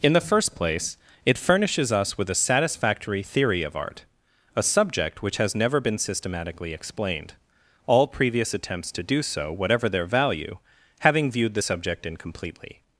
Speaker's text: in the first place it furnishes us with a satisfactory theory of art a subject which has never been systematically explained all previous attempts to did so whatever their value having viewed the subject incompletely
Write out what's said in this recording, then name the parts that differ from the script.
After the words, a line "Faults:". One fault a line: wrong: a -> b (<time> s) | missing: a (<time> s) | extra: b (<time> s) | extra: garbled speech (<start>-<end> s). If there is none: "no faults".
in the first place it furnishes us with a satisfactory theory of art a subject which has never been systematically explained all previous attempts to do so whatever their value having viewed the subject incompletely
Faults:
wrong: did -> do (9.0 s)